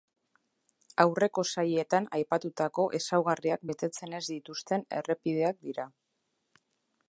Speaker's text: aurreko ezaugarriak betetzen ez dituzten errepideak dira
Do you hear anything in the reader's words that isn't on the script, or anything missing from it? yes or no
yes